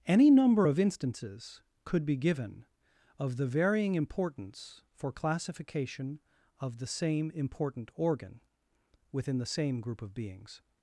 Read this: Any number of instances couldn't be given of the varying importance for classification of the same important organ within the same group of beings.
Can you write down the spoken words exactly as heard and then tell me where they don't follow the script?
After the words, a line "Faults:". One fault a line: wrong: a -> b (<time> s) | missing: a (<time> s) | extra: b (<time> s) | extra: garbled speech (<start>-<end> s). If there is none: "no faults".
Any number of instances could be given of the varying importance for classification of the same important organ within the same group of beings.
Faults:
wrong: couldn't -> could (1.8 s)